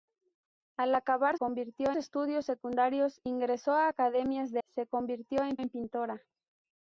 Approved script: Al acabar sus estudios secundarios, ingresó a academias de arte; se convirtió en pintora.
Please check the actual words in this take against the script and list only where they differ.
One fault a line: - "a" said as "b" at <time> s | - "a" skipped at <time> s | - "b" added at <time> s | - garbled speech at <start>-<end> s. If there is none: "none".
- "sus" said as "convirtió" at 1.4 s
- "arte" skipped at 4.6 s
- "en" added at 5.5 s